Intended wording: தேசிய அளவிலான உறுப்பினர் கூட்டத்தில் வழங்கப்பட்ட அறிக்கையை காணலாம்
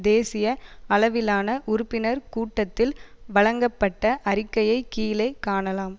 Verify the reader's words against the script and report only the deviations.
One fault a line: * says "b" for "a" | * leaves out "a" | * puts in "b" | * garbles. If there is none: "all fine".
* puts in "கீழே"